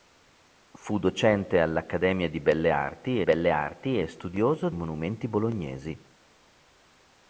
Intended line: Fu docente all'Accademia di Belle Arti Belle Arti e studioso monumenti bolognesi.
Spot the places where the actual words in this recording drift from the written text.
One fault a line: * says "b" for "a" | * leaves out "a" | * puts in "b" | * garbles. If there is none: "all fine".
all fine